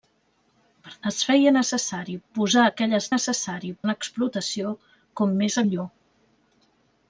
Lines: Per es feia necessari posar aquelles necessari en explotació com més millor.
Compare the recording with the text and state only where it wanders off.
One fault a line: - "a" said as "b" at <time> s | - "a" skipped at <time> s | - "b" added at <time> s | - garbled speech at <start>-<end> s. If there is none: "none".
none